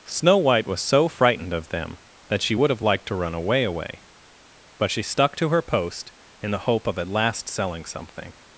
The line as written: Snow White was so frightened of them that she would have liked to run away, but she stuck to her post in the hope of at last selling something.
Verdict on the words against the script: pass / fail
fail